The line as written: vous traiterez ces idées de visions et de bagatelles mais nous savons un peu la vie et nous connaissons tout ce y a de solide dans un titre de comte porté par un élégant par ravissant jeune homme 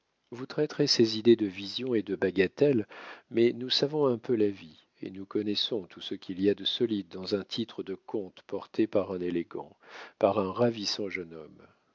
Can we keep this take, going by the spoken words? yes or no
no